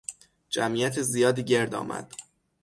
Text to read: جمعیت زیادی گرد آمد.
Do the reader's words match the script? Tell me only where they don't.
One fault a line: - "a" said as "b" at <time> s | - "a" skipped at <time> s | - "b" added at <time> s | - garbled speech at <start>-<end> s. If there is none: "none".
none